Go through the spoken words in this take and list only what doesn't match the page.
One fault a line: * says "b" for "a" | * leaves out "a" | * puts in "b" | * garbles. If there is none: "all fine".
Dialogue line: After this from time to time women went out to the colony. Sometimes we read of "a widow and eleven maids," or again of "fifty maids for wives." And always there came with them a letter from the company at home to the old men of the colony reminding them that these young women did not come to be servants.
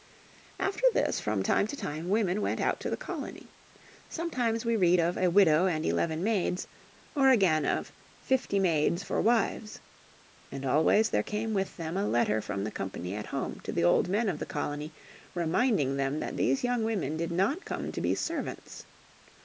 all fine